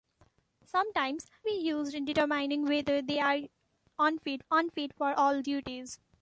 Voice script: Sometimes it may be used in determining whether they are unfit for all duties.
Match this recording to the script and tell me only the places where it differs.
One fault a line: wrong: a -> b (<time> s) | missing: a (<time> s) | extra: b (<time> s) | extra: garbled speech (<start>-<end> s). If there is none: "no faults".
missing: it may (1.3 s)
extra: unfit (4.5 s)